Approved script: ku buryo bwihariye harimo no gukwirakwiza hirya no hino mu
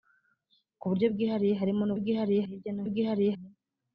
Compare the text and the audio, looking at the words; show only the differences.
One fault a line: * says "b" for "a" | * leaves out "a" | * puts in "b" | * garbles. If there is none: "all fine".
* says "bwihariye" for "gukwirakwiza"
* says "bwihariye" for "hino"